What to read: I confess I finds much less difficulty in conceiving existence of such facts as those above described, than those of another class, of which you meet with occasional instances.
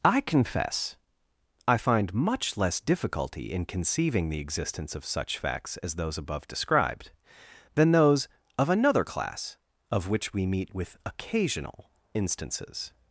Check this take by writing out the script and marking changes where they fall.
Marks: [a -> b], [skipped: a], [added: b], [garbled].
I confess I [finds -> find] much less difficulty in conceiving [added: the] existence of such facts as those above described, than those of another class, of which [you -> we] meet with occasional instances.